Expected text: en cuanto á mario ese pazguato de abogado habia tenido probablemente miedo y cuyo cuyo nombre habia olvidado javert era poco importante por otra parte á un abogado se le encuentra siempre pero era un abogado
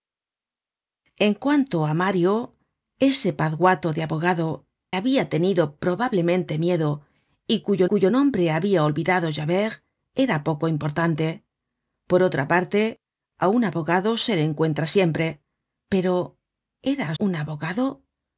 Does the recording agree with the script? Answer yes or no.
yes